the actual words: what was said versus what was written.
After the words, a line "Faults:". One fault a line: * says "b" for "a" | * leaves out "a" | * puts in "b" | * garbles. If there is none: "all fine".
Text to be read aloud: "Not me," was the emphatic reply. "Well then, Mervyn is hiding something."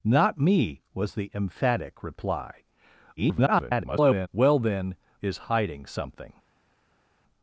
"Not me," was the emphatic reply. [garbled] "Well then, Is hiding something."
Faults:
* garbles
* leaves out "Mervyn"